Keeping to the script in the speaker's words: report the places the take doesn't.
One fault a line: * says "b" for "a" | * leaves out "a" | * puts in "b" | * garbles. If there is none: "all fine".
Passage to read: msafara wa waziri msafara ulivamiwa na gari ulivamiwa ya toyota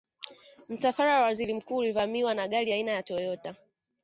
* says "mkuu" for "msafara"
* says "aina" for "ulivamiwa"